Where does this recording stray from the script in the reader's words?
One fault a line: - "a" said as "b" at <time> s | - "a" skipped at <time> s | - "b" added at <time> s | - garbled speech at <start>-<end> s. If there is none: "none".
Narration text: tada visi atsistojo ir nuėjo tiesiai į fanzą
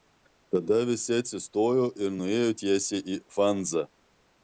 none